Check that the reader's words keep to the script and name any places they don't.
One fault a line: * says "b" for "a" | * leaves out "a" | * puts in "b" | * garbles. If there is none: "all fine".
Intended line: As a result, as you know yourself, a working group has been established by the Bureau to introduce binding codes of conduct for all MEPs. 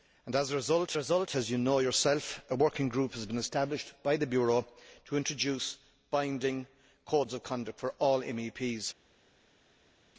* puts in "result"